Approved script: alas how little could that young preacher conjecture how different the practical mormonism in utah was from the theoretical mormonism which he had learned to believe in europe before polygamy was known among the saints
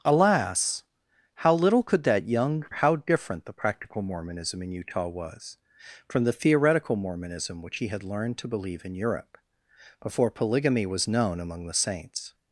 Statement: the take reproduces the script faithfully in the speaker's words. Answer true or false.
false